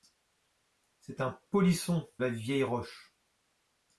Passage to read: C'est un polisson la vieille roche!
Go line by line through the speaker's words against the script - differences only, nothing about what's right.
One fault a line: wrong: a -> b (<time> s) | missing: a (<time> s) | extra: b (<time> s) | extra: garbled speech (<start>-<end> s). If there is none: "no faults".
no faults